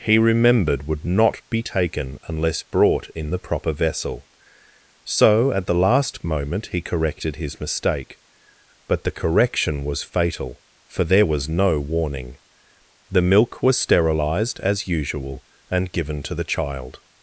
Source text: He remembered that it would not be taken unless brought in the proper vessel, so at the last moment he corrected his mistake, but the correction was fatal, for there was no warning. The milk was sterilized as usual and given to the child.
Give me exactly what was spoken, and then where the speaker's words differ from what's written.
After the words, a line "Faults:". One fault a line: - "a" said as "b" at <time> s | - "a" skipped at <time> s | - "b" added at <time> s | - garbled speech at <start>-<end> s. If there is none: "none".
He remembered would not be taken unless brought in the proper vessel, so at the last moment he corrected his mistake, but the correction was fatal, for there was no warning. The milk was sterilized as usual and given to the child.
Faults:
- "that it" skipped at 0.9 s